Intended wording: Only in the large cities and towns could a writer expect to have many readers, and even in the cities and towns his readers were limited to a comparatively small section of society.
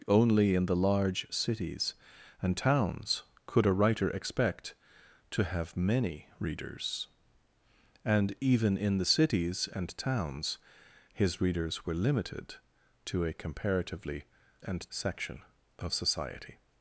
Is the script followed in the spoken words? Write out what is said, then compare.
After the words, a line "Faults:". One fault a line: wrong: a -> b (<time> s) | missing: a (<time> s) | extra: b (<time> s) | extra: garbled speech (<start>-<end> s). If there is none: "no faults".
Only in the large cities and towns could a writer expect to have many readers, and even in the cities and towns his readers were limited to a comparatively and section of society.
Faults:
wrong: small -> and (14.6 s)